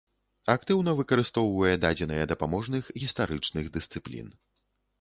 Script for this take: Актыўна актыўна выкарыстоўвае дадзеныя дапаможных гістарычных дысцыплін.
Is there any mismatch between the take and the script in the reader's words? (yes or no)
yes